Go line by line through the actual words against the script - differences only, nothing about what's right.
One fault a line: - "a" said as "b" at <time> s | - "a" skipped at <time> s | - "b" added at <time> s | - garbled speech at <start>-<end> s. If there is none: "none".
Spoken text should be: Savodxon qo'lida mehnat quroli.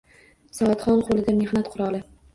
none